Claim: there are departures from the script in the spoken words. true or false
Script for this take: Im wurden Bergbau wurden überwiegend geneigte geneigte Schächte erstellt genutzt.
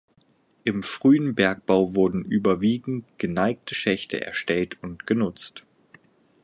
true